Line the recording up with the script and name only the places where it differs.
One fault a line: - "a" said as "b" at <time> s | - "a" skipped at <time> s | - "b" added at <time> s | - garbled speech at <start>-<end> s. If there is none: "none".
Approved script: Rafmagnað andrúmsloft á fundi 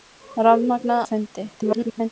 - "andrúmsloft" skipped at 1.0 s
- garbled speech at 1.6-2.1 s